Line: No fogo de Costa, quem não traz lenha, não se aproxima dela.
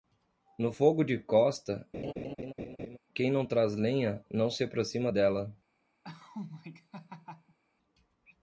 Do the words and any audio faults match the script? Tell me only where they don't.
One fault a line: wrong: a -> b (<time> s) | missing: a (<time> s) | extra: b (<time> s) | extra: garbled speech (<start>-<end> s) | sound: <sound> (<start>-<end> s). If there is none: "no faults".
sound: laugh (1.9-3.0 s)
sound: laugh (6.0-7.6 s)